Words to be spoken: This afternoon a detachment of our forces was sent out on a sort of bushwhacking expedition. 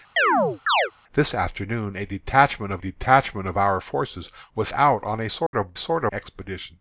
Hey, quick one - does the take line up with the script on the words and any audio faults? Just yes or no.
no